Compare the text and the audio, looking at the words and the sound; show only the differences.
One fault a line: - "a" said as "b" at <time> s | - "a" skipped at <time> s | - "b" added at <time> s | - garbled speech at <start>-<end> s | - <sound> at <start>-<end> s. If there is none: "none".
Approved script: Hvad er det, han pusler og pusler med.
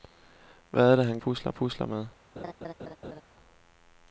- laugh at 2.4-3.2 s